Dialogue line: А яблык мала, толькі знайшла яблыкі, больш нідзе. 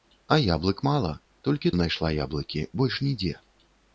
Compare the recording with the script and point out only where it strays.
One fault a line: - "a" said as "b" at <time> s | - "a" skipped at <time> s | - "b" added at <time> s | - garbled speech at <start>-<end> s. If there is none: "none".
none